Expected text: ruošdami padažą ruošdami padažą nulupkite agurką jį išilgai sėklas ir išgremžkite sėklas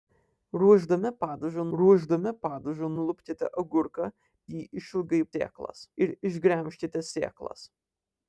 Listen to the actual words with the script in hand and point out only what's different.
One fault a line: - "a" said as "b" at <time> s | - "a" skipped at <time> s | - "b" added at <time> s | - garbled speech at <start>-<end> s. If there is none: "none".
none